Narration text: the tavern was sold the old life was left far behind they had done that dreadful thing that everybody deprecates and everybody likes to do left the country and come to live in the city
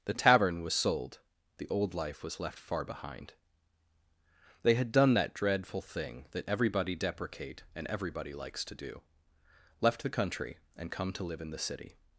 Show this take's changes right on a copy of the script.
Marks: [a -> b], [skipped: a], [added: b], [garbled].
the tavern was sold the old life was left far behind they had done that dreadful thing that everybody [deprecates -> deprecate] and everybody likes to do left the country and come to live in the city